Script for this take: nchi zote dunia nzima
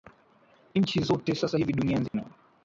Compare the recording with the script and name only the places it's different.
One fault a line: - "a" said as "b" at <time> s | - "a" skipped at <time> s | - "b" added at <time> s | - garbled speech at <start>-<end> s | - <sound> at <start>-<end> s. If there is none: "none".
- "sasa hivi" added at 1.3 s
- dropout at 2.1-2.1 s